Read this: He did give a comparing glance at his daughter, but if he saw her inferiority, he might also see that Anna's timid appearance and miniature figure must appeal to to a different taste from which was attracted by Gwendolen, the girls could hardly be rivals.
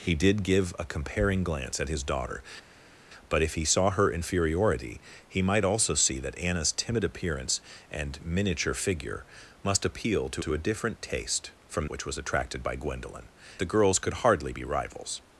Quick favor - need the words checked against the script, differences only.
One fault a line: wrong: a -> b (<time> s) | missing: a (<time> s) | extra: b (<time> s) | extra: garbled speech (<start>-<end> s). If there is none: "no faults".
no faults